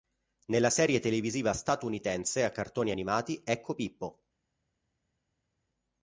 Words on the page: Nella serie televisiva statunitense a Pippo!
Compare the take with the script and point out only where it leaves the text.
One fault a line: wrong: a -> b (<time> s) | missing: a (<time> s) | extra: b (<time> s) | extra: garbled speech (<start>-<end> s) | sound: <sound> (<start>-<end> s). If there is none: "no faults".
extra: cartoni animati Ecco (2.5 s)